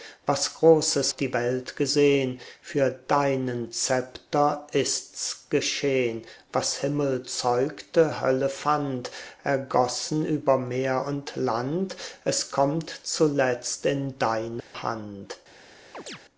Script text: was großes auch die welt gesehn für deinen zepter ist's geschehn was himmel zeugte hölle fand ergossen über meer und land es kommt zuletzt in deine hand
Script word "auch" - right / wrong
wrong